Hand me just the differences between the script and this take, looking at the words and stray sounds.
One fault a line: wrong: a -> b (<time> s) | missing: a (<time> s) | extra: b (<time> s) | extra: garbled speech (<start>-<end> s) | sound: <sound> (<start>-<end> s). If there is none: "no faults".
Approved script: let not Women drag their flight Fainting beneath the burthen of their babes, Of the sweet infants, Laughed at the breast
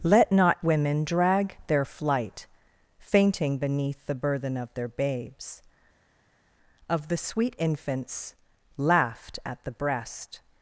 no faults